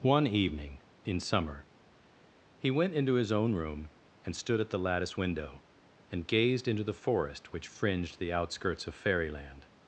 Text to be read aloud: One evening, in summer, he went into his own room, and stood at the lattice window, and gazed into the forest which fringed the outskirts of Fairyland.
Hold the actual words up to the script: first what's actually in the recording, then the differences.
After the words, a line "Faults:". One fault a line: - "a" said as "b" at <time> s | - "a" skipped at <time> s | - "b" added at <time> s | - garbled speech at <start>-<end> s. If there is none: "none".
One evening, in summer, he went into his own room, and stood at the lattice window, and gazed into the forest which fringed the outskirts of Fairyland.
Faults:
none